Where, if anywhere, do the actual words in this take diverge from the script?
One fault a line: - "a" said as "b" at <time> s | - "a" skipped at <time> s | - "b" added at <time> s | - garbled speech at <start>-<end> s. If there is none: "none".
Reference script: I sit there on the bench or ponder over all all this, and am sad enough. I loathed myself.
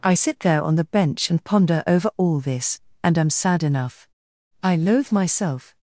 - "or" said as "and" at 1.3 s
- "all" skipped at 2.4 s
- "loathed" said as "loathe" at 4.8 s